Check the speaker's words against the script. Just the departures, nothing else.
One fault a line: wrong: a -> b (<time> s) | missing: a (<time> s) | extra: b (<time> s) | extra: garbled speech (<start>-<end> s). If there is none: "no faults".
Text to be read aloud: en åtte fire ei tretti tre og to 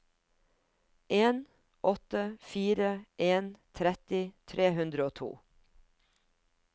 wrong: ei -> en (3.2 s)
extra: hundre (4.8 s)